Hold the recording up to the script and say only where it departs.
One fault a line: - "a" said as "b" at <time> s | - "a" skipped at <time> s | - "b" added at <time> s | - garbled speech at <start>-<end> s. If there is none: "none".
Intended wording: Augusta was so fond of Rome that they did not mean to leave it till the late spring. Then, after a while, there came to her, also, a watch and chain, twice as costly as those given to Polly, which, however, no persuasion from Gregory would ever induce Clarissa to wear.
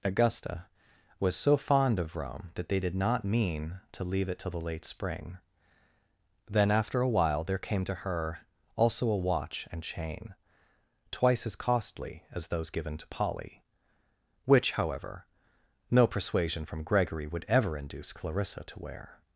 none